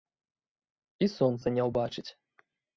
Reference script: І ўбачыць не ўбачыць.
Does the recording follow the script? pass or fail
fail